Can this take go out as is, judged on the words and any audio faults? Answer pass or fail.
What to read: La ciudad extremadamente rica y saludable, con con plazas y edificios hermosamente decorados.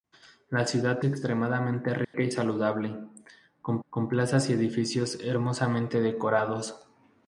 fail